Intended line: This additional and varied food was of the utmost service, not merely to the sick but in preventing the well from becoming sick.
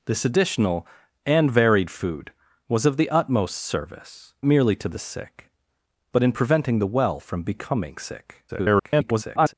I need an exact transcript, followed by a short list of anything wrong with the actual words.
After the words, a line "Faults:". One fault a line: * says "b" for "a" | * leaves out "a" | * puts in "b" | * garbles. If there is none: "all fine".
This additional and varied food was of the utmost service, merely to the sick but in preventing the well from becoming sick. [garbled]
Faults:
* leaves out "not"
* garbles